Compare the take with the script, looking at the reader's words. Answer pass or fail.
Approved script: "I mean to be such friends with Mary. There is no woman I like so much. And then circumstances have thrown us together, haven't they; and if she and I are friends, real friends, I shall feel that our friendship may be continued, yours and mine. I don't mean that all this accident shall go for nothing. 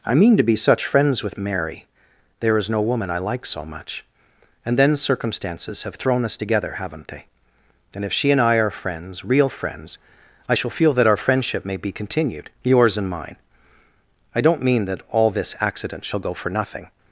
pass